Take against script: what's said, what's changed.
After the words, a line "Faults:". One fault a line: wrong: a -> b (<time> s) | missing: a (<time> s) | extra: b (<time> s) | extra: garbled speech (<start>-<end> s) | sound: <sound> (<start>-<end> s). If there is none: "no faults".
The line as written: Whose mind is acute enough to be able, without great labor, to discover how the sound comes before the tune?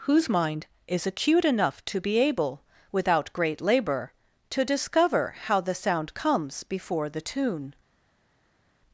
Whose mind is acute enough to be able, without great labor, to discover how the sound comes before the tune?
Faults:
no faults